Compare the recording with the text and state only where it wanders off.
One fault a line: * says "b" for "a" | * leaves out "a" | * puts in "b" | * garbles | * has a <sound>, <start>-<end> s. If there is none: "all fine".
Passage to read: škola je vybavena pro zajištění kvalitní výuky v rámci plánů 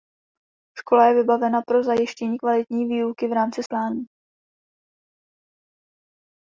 all fine